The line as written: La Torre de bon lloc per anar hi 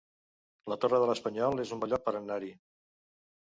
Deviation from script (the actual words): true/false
true